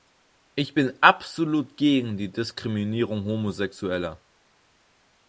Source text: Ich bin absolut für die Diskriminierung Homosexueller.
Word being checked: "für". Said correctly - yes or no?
no